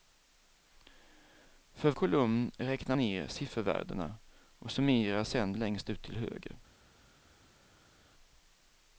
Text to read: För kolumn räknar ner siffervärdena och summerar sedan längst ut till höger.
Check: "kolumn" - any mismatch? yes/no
no